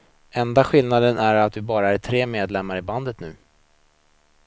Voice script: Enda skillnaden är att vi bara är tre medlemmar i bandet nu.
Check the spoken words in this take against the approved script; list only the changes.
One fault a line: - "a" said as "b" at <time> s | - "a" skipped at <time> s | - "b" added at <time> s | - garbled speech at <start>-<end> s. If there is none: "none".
none